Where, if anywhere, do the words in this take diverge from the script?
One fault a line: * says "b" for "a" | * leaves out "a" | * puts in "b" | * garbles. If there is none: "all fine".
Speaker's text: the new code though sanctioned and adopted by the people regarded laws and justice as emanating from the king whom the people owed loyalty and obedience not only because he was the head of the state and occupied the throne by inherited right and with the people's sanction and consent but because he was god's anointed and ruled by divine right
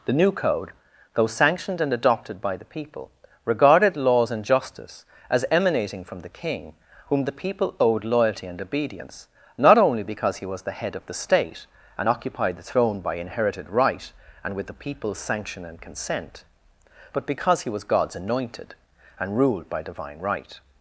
all fine